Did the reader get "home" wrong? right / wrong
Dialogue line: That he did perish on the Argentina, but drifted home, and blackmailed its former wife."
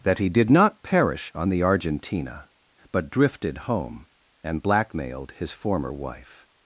right